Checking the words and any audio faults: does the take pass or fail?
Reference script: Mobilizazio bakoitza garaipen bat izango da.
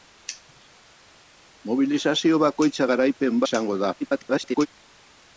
fail